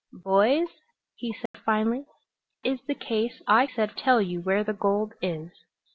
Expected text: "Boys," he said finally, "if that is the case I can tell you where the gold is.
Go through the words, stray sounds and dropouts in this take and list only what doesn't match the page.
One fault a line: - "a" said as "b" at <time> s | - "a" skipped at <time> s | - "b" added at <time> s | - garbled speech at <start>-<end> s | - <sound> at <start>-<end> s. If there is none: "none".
- dropout at 1.5-1.5 s
- "if that" skipped at 2.0 s
- "can" said as "said" at 3.6 s